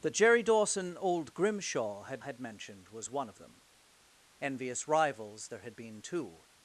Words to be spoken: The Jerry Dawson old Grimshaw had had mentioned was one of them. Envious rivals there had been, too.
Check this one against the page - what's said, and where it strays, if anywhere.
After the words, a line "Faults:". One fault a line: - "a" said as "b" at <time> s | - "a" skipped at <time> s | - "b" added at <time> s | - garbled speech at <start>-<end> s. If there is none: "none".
The Jerry Dawson old Grimshaw had had mentioned was one of them. Envious rivals there had been, too.
Faults:
none